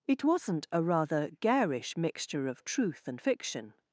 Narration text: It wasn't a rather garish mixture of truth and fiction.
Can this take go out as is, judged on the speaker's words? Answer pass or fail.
pass